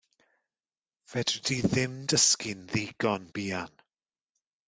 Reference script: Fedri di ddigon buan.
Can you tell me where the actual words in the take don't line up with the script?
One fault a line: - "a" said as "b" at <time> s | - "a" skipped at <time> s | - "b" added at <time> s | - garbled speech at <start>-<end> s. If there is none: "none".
- "ddim dysgu'n" added at 1.6 s